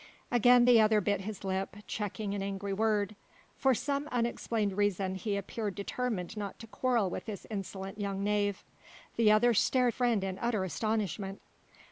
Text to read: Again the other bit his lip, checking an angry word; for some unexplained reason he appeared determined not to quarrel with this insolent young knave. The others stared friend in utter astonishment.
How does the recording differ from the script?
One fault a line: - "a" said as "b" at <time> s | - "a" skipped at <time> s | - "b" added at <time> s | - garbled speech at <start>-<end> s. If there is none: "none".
none